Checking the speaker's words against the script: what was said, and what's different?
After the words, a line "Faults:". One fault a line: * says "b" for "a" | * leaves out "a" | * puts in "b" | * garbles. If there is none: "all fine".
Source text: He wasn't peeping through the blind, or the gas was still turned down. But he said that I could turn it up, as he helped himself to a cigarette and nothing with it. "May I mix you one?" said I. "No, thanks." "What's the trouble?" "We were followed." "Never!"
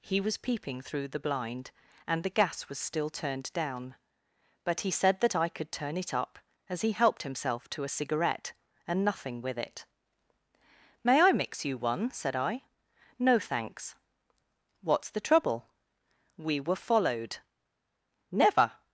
He was peeping through the blind, and the gas was still turned down. But he said that I could turn it up, as he helped himself to a cigarette and nothing with it. "May I mix you one?" said I. "No, thanks." "What's the trouble?" "We were followed." "Never!"
Faults:
* says "was" for "wasn't"
* says "and" for "or"